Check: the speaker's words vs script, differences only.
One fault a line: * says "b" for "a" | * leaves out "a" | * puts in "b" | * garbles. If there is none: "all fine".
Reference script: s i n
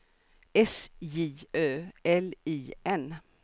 * puts in "j ö l"